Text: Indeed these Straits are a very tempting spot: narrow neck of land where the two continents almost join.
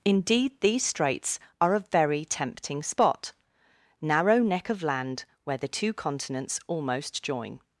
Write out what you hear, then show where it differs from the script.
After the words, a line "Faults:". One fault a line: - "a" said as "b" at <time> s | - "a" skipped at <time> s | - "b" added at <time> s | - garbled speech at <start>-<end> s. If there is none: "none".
Indeed these Straits are a very tempting spot: narrow neck of land where the two continents almost join.
Faults:
none